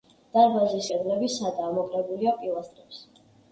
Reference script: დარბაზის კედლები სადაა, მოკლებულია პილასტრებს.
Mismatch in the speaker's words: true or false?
false